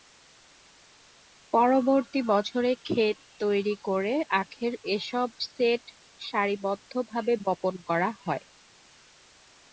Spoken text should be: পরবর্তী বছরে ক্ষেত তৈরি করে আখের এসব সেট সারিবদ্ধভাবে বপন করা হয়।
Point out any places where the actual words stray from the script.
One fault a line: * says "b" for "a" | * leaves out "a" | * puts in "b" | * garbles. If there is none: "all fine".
all fine